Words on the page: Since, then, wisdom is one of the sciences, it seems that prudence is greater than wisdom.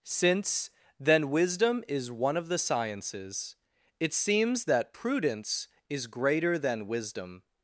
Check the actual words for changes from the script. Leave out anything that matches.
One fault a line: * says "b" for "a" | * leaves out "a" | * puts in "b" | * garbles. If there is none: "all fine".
all fine